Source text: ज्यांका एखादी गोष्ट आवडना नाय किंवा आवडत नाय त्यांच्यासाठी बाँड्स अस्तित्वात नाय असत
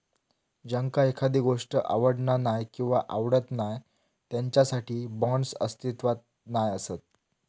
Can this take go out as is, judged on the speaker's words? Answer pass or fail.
pass